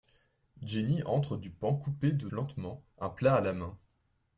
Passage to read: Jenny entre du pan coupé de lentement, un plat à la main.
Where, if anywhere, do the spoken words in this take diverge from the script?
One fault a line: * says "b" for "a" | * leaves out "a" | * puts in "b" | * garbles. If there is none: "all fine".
all fine